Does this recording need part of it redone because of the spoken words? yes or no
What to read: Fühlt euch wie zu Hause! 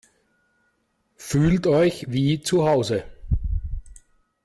no